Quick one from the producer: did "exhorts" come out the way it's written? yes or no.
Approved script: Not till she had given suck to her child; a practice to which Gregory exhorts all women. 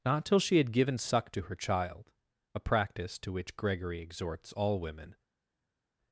yes